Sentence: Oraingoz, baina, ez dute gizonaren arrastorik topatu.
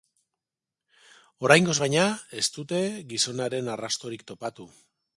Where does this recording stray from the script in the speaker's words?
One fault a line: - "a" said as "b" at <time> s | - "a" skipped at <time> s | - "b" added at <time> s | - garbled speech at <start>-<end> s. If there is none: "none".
none